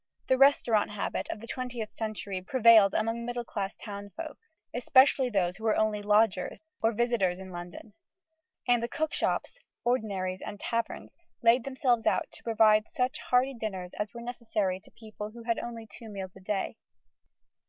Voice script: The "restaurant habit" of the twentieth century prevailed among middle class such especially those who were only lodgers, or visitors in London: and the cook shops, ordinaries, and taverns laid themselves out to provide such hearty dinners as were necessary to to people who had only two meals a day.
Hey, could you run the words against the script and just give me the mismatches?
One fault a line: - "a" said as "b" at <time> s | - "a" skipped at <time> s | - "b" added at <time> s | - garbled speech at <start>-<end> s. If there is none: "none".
- "such" said as "townsfolk" at 3.7 s
- "to" skipped at 14.9 s